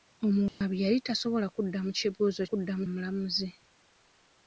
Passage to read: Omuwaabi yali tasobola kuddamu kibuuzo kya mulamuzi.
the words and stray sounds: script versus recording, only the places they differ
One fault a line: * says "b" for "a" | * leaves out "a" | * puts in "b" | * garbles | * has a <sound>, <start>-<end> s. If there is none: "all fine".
* has a dropout, 0.5-0.6 s
* says "kuddamu" for "kya"